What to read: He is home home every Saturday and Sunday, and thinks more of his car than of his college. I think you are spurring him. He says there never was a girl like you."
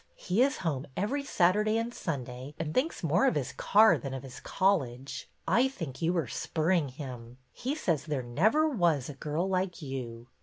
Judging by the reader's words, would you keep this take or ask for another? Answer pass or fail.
fail